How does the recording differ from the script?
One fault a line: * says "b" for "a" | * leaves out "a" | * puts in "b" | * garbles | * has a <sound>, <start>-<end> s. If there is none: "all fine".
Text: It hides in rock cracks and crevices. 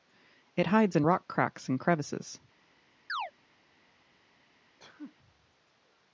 * has a chirp, 3.1-3.3 s
* has a sneeze, 4.8-5.1 s